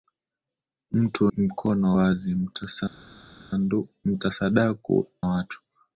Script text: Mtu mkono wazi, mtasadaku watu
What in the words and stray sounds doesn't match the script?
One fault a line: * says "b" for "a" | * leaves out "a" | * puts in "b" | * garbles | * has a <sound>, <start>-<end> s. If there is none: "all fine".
all fine